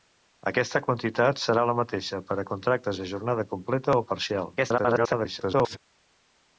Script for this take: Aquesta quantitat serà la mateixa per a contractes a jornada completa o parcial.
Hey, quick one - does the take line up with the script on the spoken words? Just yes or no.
no